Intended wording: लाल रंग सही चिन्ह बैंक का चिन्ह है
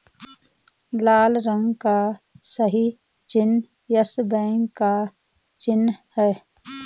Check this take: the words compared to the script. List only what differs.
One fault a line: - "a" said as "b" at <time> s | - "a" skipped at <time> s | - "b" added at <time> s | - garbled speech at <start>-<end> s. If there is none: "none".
- "का" added at 1.8 s
- "यस" added at 4.0 s